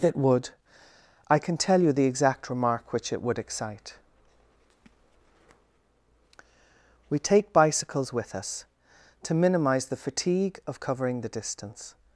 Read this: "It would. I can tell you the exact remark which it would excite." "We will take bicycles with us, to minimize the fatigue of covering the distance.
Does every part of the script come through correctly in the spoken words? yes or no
no